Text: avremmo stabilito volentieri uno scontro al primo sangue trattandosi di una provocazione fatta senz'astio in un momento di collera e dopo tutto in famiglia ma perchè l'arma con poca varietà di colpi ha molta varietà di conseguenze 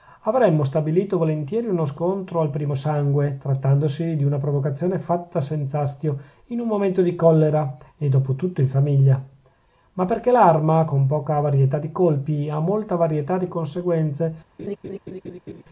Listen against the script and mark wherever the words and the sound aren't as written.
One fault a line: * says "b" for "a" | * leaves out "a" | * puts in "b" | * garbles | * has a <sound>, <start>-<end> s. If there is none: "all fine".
* has a laugh, 14.6-15.6 s